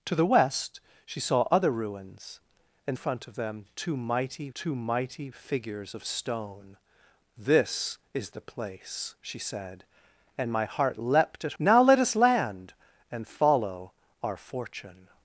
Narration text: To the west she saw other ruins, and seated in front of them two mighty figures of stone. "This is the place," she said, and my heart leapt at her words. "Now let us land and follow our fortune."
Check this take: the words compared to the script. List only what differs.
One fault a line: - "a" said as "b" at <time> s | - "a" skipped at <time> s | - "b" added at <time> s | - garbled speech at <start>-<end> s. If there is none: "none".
- "seated in" skipped at 3.0 s
- "two mighty" added at 4.5 s
- "her words" skipped at 11.5 s